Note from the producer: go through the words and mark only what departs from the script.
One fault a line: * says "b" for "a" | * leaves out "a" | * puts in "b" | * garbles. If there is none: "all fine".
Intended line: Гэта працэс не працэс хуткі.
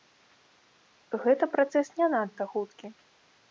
* says "надта" for "працэс"